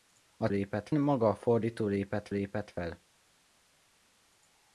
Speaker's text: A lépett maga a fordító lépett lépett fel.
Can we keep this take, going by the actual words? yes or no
yes